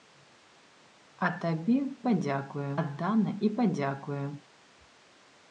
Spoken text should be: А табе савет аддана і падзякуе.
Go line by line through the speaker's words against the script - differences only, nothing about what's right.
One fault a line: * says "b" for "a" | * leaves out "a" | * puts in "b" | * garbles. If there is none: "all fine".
* says "падзякуе" for "савет"